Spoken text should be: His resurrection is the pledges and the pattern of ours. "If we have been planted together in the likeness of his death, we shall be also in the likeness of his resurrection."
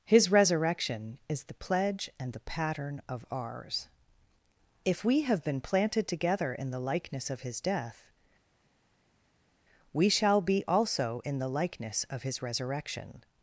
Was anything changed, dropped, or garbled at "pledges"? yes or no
yes